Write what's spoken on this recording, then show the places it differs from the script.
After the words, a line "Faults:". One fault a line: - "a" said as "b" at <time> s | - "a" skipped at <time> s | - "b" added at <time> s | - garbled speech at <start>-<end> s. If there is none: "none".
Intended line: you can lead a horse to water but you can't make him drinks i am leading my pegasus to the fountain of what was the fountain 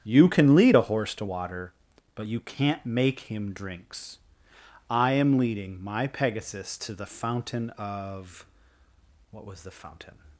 you can lead a horse to water but you can't make him drinks i am leading my pegasus to the fountain of what was the fountain
Faults:
none